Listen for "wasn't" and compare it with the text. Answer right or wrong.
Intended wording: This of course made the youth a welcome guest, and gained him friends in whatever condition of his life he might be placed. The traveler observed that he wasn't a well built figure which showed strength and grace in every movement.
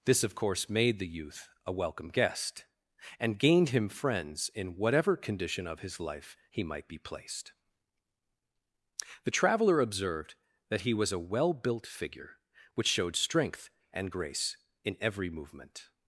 wrong